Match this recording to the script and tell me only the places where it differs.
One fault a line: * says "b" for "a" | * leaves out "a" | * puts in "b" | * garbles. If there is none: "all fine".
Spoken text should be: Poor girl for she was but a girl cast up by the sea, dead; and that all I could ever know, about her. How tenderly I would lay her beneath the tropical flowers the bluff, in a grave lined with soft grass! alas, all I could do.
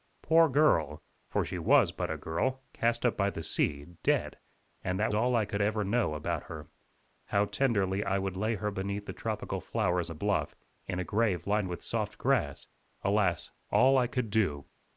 all fine